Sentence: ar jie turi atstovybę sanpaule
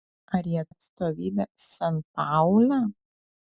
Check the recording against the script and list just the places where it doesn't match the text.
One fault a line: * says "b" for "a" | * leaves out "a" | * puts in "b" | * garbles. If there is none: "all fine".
* leaves out "turi"